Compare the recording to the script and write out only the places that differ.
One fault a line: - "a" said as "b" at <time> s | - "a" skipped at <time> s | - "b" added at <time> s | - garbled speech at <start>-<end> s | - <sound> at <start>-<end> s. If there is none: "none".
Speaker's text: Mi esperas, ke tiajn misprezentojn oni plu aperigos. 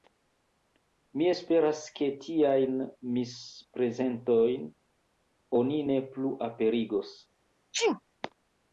- "ne" added at 5.9 s
- sneeze at 7.7-8.0 s